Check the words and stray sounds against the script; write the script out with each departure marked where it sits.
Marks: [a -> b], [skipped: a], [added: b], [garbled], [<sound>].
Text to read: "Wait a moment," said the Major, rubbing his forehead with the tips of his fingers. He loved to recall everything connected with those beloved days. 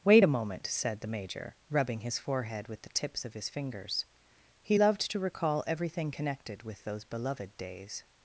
"Wait a moment," said the Major, rubbing his forehead with the tips of his fingers. He loved to recall everything connected with those beloved days.